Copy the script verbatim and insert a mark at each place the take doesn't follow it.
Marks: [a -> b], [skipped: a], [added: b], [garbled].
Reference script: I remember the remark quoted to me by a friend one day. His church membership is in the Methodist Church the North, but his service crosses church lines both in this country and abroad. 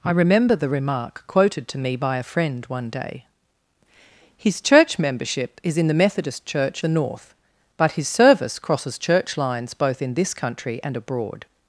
I remember the remark quoted to me by a friend one day. His church membership is in the Methodist Church the North, but his service crosses church lines both in this country and abroad.